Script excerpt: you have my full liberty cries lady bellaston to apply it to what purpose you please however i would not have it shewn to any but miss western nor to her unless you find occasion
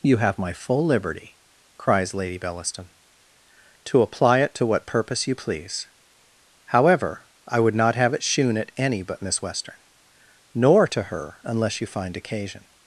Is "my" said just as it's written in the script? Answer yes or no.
yes